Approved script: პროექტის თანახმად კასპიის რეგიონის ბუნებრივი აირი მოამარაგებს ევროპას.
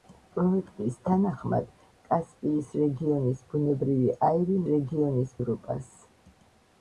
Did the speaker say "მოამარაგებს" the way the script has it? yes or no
no